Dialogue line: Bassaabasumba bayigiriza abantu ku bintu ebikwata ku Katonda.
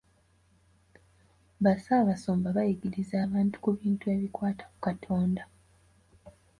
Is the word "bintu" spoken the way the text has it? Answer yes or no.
yes